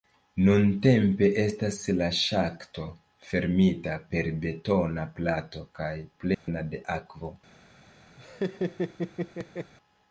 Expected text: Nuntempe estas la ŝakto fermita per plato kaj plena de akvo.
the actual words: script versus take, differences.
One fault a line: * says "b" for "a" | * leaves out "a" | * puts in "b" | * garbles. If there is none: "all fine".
* puts in "betona"